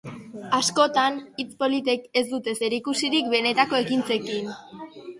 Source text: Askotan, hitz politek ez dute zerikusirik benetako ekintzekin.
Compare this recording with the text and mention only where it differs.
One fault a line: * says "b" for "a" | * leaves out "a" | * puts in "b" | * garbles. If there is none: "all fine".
all fine